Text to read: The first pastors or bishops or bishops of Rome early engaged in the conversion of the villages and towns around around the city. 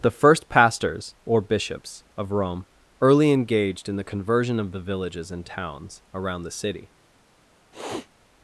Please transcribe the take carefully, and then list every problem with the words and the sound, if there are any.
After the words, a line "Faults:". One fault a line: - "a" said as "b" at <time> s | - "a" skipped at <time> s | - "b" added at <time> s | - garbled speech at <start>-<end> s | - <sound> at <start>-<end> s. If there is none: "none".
The first pastors or bishops of Rome early engaged in the conversion of the villages and towns around the city.
Faults:
- "or bishops" skipped at 2.0 s
- "around" skipped at 6.4 s
- sniff at 7.7-8.1 s